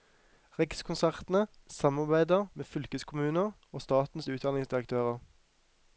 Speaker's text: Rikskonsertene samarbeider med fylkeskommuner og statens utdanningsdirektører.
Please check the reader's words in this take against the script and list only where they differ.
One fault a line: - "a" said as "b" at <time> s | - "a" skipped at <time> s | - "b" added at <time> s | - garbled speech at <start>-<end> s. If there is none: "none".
none